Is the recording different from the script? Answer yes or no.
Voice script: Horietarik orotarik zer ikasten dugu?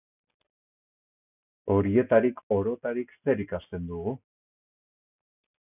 no